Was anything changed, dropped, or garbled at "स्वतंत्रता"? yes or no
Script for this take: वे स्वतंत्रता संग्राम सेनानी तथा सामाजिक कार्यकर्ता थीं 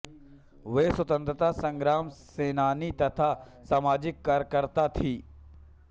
no